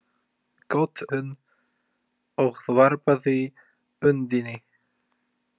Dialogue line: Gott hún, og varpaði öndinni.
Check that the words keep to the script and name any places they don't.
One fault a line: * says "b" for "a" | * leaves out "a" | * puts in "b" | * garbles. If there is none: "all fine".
all fine